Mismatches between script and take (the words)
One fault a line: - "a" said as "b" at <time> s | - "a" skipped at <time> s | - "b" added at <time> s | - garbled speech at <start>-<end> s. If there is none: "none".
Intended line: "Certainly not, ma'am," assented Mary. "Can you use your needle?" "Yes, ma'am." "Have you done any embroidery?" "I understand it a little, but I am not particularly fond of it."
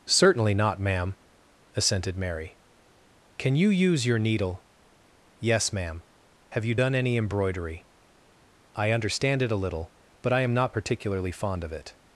none